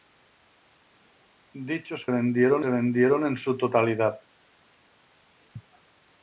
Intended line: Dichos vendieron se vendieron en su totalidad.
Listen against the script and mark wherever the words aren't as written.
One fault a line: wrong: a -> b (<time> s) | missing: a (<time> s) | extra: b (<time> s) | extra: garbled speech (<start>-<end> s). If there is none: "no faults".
no faults